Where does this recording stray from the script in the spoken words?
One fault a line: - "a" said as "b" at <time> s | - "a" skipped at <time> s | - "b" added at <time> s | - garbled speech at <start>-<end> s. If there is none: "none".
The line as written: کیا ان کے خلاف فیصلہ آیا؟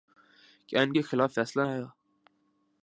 none